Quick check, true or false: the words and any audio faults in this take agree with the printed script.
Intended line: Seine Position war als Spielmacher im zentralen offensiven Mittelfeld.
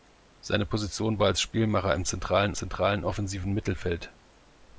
false